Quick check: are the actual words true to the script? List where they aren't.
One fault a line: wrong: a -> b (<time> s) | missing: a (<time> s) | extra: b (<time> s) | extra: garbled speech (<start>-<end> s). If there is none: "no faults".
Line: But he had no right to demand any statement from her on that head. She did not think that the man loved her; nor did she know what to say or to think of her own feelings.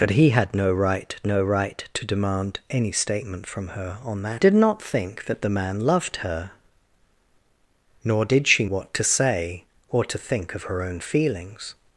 extra: no right (1.3 s)
missing: head She (4.4 s)
missing: know (8.7 s)